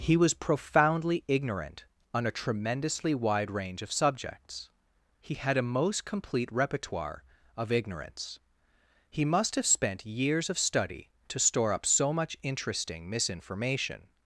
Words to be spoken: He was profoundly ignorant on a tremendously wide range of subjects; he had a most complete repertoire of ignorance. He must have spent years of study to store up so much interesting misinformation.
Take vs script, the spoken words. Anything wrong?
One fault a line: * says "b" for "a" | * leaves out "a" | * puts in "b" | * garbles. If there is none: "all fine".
all fine